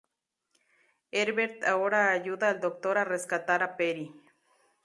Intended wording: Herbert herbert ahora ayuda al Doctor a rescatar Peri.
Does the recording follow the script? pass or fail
fail